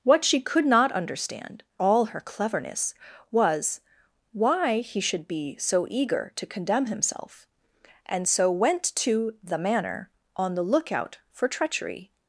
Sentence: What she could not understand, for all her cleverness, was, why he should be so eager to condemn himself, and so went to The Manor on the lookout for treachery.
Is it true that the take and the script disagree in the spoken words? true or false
true